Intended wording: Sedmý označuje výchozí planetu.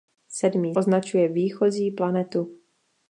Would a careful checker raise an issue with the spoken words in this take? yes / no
no